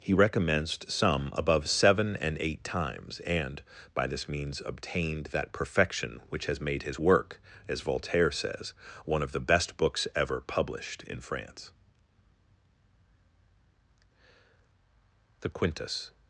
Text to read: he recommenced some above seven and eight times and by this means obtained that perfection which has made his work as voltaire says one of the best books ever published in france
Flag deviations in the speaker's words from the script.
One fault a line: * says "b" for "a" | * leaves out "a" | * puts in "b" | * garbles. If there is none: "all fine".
* puts in "the quintus"